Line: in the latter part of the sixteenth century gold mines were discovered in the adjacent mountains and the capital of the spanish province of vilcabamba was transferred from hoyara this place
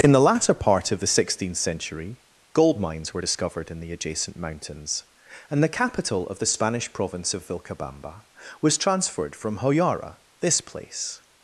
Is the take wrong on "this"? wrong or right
right